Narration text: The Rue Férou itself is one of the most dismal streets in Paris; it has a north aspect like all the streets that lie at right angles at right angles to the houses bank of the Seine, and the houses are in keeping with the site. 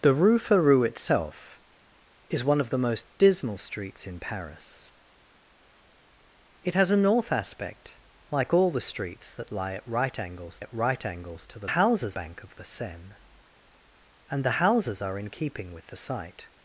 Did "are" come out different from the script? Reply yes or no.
no